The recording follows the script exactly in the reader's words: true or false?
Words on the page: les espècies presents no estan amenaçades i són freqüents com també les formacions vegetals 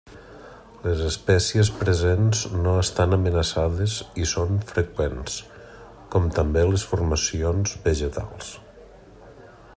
true